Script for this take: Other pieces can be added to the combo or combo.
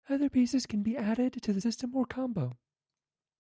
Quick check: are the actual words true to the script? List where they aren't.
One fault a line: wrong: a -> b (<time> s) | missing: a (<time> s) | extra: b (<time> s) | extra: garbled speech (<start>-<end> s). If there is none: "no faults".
wrong: combo -> system (1.6 s)